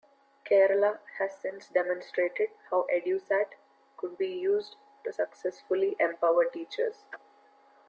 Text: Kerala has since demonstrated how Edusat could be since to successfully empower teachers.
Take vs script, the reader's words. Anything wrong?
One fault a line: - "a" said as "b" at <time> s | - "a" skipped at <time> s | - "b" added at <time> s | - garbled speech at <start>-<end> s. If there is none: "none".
- "since" said as "used" at 4.3 s